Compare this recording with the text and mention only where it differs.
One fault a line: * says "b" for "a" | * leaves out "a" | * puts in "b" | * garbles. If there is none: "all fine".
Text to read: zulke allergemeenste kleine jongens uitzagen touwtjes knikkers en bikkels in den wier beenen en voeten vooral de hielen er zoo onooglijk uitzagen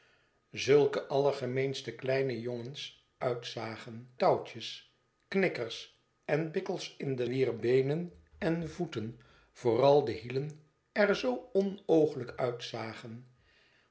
all fine